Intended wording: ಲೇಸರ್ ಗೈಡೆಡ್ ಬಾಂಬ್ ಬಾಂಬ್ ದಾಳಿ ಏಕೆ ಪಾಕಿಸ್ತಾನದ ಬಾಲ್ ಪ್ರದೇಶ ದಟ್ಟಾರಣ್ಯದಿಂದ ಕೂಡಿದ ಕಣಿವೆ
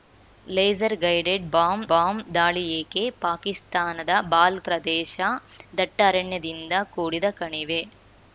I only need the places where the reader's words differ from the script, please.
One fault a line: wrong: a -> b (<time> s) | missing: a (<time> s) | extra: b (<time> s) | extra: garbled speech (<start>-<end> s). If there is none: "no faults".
no faults